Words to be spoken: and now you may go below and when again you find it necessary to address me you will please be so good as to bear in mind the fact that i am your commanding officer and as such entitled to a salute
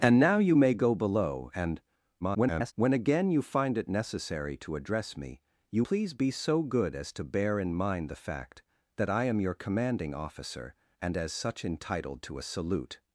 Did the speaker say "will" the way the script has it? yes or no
no